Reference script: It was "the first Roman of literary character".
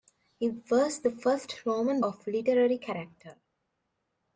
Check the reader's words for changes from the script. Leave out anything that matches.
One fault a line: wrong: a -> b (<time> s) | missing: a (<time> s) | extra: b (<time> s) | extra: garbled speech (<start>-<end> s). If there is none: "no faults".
no faults